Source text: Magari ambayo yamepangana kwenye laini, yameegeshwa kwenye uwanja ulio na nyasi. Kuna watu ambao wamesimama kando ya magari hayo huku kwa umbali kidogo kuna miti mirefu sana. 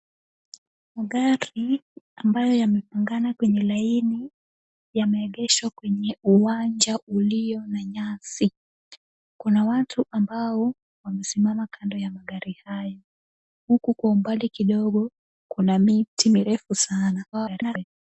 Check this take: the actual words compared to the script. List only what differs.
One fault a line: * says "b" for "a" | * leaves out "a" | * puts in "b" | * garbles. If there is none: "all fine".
* garbles